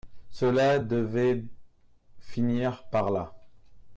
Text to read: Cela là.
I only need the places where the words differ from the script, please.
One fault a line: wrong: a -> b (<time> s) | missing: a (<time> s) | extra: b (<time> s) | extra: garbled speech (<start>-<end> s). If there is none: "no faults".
extra: devait finir par (0.8 s)